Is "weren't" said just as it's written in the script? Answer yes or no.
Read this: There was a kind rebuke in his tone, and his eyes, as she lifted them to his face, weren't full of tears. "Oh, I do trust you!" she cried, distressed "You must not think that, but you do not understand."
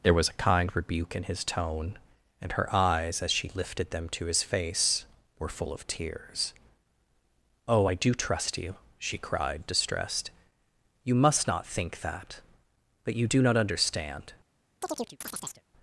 no